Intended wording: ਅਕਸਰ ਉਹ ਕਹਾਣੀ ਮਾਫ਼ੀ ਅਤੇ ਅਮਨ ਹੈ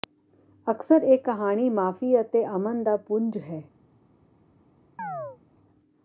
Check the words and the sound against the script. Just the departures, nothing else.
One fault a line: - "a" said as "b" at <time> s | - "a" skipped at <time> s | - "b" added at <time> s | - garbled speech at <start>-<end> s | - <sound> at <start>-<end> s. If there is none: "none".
- "ਉਹ" said as "ਇਹ" at 1.0 s
- "ਦਾ ਪੁੰਜ" added at 2.8 s
- chirp at 5.0-5.4 s